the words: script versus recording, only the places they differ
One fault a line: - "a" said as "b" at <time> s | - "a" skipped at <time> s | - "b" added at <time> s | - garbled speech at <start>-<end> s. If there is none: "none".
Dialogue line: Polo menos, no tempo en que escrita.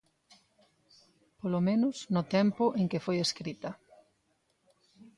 - "foi" added at 3.0 s